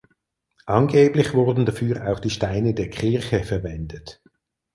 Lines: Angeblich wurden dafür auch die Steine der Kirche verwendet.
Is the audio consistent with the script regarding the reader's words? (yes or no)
yes